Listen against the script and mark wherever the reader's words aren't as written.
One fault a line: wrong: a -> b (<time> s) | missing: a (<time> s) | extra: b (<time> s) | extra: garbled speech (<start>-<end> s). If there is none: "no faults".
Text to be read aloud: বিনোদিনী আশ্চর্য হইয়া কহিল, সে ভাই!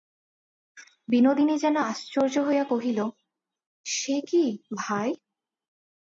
extra: যেন (1.6 s)
extra: কী (4.3 s)